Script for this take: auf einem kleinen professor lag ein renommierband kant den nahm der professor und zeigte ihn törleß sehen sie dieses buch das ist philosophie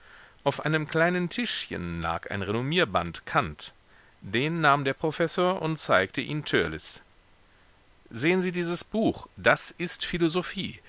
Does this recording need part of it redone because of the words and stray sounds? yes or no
yes